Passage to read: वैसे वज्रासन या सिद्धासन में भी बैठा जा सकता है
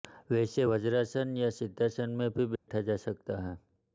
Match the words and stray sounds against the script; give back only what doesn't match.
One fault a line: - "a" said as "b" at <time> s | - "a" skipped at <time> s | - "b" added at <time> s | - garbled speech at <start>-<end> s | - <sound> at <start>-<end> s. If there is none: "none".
- dropout at 2.6-2.7 s